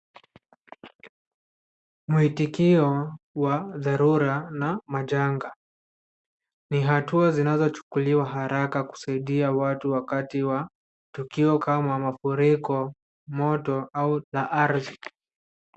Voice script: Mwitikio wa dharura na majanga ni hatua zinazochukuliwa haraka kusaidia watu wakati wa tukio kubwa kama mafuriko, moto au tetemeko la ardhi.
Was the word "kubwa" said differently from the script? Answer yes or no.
yes